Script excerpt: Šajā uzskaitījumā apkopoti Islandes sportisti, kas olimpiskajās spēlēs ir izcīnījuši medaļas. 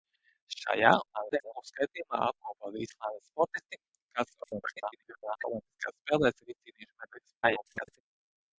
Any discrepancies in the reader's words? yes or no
yes